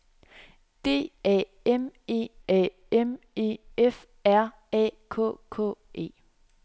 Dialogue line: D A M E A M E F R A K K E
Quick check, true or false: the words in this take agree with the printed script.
true